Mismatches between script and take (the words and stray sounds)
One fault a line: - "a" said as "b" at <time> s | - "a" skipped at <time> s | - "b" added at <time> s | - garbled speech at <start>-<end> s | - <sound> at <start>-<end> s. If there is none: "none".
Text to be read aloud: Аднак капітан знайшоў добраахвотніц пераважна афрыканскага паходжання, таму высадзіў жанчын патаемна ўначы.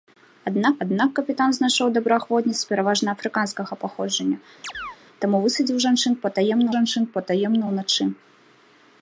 - "аднак" added at 0.9 s
- chirp at 4.6-5.0 s
- "жанчын патаемна" added at 6.8 s